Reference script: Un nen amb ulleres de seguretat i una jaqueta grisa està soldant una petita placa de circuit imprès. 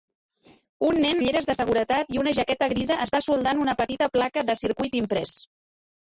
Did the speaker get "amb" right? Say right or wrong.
wrong